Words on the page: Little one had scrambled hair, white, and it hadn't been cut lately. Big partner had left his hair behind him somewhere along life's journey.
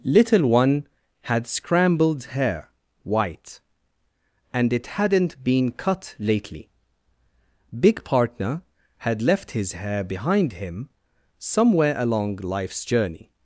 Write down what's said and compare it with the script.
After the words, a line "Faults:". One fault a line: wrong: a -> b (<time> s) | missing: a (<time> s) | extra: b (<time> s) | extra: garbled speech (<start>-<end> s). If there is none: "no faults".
Little one had scrambled hair, white, and it hadn't been cut lately. Big partner had left his hair behind him somewhere along life's journey.
Faults:
no faults